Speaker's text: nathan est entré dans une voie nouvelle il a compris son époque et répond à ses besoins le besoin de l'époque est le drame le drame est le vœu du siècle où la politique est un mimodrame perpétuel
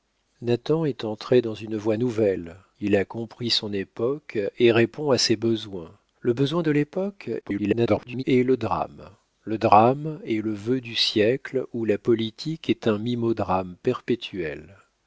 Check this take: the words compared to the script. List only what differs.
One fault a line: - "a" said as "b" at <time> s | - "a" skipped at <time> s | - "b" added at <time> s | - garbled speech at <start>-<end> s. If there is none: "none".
- garbled speech at 7.4-8.2 s